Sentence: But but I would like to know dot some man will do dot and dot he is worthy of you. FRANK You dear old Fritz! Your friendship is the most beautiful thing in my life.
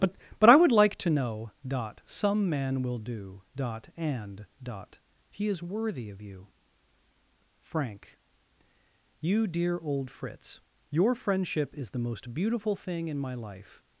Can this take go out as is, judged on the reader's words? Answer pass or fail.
pass